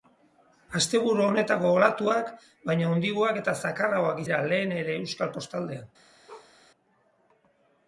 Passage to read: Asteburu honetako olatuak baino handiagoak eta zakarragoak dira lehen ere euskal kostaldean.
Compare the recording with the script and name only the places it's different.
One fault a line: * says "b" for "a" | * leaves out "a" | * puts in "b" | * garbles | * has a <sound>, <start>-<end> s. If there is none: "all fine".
* has a bark, 6.3-6.5 s